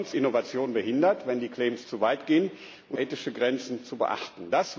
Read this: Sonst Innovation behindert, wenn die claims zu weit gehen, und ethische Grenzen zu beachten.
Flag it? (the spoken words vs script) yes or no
no